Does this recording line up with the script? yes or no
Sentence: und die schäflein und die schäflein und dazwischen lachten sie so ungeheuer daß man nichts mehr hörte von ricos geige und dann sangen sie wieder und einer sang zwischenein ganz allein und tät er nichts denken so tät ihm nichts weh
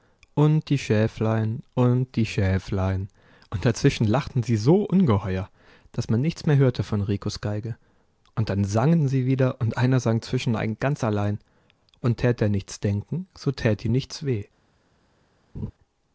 yes